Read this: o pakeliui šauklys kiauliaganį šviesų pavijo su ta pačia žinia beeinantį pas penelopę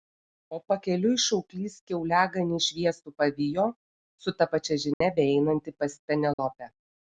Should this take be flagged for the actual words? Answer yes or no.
no